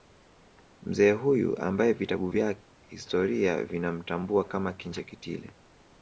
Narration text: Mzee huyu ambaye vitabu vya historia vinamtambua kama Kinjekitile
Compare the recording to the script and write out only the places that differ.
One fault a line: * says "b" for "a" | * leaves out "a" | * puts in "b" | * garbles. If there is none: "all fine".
all fine